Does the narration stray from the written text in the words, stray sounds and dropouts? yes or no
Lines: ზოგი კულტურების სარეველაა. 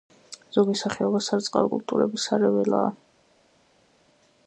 yes